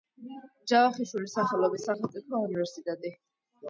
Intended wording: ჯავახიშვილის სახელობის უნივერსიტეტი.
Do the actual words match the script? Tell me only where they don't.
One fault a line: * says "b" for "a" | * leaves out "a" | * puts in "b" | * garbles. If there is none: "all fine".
* puts in "სახელმწიფო"